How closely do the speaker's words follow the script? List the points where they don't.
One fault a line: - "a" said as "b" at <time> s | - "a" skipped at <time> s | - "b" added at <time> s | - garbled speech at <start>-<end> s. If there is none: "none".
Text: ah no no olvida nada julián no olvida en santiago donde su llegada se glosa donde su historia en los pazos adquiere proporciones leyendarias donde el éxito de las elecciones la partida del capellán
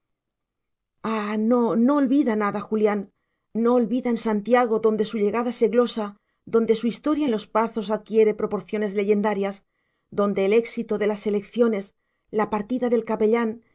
none